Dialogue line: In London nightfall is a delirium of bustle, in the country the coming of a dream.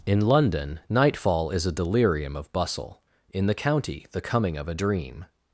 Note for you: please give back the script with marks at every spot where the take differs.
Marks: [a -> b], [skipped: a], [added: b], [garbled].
In London nightfall is a delirium of bustle, in the [country -> county] the coming of a dream.